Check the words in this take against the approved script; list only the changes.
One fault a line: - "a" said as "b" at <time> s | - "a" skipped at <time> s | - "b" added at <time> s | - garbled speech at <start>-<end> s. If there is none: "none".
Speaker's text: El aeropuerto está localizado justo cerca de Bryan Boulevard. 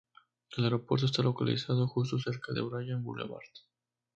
none